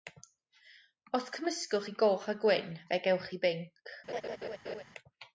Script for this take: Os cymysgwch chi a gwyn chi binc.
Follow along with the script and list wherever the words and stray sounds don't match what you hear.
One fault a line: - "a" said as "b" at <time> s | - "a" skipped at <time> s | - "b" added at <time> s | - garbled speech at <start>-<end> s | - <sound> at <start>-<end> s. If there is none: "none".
- "goch" added at 2.0 s
- "fe gewch" added at 2.9 s
- laugh at 4.1-4.8 s